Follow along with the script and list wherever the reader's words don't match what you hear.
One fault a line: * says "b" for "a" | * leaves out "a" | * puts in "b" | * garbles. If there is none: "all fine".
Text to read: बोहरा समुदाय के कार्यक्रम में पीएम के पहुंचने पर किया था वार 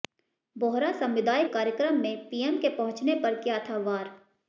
* leaves out "के"